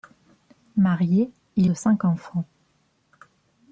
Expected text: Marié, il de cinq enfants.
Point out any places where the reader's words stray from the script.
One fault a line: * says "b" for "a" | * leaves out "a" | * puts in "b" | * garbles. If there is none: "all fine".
all fine